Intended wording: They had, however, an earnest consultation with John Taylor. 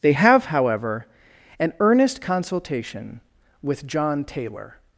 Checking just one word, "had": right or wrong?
wrong